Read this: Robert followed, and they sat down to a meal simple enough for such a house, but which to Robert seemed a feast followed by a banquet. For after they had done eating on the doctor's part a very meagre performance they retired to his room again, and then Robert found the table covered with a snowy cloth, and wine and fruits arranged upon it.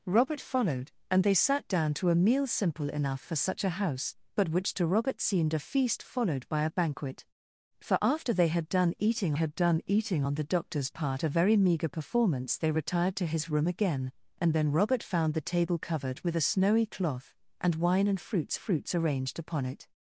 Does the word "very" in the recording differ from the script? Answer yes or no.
no